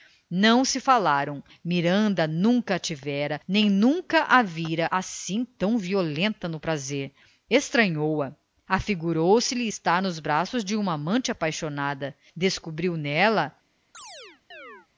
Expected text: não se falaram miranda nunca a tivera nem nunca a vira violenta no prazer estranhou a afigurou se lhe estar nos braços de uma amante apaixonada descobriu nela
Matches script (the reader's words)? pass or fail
fail